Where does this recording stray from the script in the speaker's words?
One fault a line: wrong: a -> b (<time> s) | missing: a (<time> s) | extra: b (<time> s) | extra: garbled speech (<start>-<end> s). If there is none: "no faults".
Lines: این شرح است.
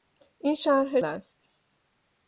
no faults